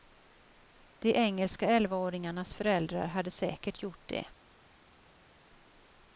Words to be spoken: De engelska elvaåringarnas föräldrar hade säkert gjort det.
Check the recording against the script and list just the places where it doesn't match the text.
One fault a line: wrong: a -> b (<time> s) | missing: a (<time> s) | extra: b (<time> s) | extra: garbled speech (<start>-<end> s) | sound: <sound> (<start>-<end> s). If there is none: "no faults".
no faults